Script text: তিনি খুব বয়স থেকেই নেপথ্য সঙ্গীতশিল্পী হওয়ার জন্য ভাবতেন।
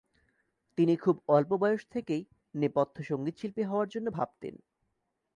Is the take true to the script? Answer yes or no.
no